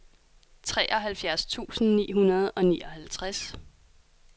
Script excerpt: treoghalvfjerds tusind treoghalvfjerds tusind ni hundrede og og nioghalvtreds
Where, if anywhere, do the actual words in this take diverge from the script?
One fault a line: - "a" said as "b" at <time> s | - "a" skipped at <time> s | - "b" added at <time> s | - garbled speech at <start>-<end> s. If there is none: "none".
- "treoghalvfjerds tusind" skipped at 1.9 s
- "og" skipped at 2.6 s